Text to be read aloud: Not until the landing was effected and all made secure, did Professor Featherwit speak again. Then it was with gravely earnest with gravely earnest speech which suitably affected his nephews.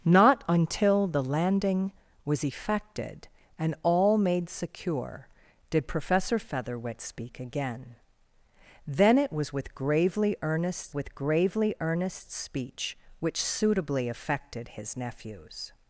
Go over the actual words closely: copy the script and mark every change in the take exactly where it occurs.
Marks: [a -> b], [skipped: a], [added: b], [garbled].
Not until the landing was effected and all made secure, did Professor Featherwit speak again. Then it was with gravely earnest with gravely earnest speech which suitably affected his nephews.